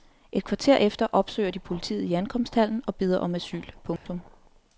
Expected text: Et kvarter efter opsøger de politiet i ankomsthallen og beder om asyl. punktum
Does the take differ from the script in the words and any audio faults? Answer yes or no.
yes